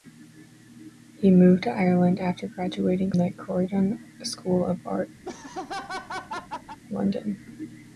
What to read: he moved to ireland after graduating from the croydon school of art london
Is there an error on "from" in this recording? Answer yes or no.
yes